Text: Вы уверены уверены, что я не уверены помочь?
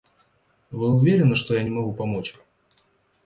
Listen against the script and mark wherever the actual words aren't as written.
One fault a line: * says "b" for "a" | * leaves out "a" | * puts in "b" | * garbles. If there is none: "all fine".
* leaves out "уверены"
* says "могу" for "уверены"